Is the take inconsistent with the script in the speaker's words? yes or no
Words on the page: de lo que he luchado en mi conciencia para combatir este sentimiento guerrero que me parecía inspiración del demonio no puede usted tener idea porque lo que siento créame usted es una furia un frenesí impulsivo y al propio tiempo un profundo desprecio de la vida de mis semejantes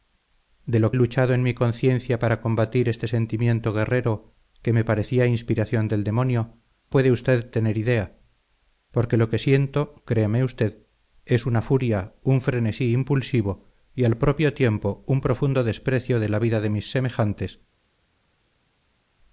yes